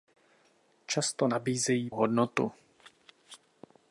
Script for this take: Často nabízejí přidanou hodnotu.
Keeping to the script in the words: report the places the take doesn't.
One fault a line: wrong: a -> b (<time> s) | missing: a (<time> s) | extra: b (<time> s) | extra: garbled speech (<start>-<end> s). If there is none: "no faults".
missing: přidanou (1.9 s)